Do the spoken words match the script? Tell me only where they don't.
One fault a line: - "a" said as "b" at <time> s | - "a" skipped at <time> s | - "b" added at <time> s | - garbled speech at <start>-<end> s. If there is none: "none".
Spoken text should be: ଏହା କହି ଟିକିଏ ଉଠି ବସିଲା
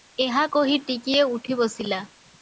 none